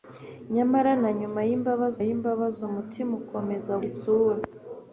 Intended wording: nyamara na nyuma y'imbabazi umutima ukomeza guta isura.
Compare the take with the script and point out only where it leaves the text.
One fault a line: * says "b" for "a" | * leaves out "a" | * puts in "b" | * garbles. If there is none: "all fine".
* puts in "y'imbabazi"
* leaves out "guta"